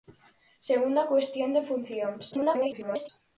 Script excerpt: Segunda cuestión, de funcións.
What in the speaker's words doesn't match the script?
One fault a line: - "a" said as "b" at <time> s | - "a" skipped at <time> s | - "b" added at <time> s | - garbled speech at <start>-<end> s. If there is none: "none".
- garbled speech at 2.3-3.1 s